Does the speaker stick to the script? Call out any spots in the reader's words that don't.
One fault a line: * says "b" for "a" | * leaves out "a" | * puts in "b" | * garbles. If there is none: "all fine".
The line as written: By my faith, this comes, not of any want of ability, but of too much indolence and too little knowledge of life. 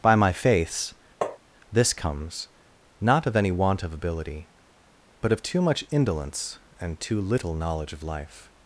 * says "faiths" for "faith"